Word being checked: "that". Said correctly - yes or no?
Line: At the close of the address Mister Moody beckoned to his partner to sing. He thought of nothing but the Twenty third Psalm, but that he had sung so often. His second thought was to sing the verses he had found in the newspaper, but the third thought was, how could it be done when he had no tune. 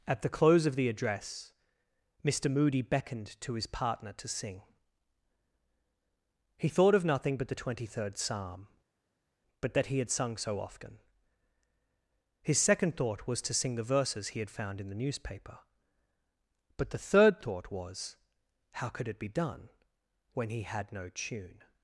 yes